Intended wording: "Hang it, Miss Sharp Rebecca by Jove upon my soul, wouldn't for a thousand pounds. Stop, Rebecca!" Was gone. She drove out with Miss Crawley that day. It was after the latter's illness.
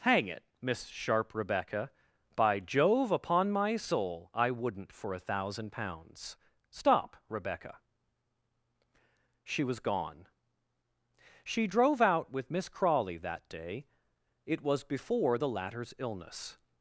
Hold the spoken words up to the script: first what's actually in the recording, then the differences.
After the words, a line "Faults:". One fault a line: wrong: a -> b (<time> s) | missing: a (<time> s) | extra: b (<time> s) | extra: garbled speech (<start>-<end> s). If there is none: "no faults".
"Hang it, Miss Sharp Rebecca by Jove upon my soul, I wouldn't for a thousand pounds. Stop, Rebecca!" She was gone. She drove out with Miss Crawley that day. It was before the latter's illness.
Faults:
extra: I (4.3 s)
extra: She (9.4 s)
wrong: after -> before (14.8 s)